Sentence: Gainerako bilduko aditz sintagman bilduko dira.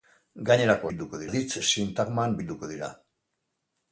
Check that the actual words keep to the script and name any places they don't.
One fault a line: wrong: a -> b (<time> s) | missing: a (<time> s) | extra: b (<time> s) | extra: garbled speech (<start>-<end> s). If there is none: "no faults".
no faults